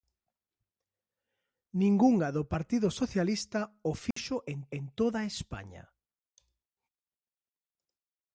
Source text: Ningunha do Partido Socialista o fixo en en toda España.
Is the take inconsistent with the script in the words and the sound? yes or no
yes